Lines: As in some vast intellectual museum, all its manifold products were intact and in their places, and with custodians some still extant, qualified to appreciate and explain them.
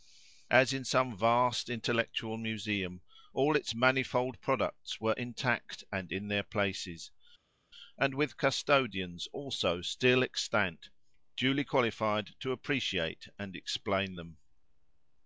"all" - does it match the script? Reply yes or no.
yes